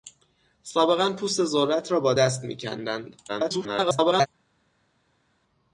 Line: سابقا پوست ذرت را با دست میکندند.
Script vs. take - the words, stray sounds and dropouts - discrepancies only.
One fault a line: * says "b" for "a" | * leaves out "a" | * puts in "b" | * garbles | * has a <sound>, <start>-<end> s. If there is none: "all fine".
* garbles